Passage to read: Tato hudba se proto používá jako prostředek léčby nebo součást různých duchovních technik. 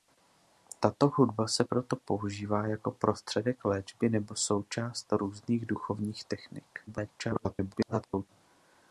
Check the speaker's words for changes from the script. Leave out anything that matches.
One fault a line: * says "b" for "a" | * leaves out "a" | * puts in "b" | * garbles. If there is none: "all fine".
* garbles